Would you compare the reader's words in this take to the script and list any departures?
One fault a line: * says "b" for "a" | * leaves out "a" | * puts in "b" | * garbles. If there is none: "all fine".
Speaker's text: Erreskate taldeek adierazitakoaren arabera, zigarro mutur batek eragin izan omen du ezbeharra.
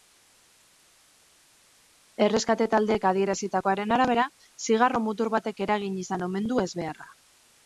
all fine